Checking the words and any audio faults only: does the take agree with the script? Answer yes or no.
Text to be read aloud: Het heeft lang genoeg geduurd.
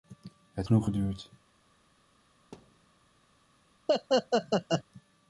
no